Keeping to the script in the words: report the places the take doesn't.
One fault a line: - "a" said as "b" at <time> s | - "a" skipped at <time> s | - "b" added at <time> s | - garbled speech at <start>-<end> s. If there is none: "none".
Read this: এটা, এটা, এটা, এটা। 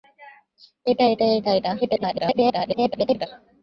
- garbled speech at 1.8-3.3 s